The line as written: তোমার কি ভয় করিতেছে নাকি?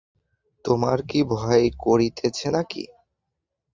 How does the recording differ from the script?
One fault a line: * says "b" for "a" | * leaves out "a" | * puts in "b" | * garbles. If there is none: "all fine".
all fine